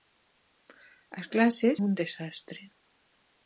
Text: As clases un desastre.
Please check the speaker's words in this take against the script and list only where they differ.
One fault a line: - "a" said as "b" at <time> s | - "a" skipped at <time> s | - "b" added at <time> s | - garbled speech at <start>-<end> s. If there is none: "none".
none